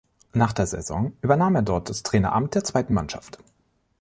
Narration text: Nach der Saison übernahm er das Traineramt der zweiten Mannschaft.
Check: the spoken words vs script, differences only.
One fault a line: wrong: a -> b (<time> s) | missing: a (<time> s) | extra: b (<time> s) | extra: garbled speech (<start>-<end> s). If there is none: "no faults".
extra: dort (1.6 s)